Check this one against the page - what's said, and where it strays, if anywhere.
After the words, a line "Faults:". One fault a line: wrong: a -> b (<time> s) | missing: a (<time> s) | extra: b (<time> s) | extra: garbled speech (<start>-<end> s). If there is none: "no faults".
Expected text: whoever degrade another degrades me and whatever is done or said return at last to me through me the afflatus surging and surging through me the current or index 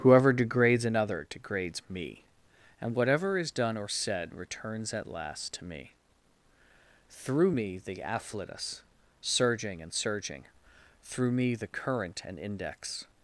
whoever degrades another degrades me and whatever is done or said returns at last to me through me the afflatus surging and surging through me the current and index
Faults:
wrong: degrade -> degrades (0.3 s)
wrong: return -> returns (4.3 s)
wrong: or -> and (12.3 s)